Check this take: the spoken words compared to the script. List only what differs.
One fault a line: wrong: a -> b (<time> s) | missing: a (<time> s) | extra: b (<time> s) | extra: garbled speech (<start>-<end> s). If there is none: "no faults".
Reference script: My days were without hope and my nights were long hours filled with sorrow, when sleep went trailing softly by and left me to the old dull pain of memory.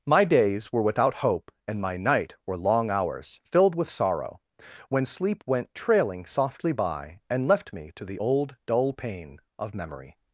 wrong: nights -> night (1.9 s)